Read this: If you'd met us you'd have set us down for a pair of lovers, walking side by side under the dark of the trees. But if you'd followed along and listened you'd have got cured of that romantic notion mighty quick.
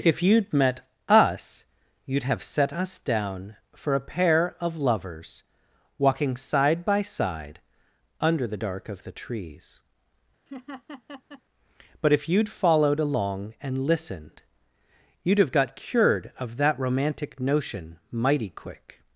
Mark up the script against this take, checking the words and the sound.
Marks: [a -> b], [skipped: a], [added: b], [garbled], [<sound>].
If you'd met us you'd have set us down for a pair of lovers, walking side by side under the dark of the trees. [laugh] But if you'd followed along and listened you'd have got cured of that romantic notion mighty quick.